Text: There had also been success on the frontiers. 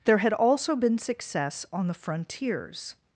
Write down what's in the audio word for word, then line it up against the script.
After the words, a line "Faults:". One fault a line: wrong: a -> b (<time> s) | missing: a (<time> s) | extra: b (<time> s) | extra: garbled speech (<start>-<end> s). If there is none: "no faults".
There had also been success on the frontiers.
Faults:
no faults